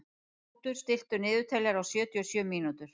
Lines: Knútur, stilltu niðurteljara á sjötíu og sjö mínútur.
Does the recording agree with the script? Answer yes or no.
yes